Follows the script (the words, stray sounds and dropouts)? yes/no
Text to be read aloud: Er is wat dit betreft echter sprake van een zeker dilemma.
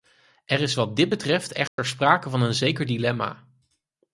no